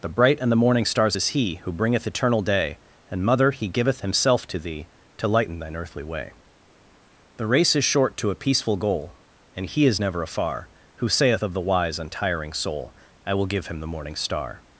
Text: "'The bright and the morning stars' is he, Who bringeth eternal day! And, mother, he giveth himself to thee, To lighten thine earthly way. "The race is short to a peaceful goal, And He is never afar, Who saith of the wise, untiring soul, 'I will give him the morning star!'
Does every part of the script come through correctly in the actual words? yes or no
yes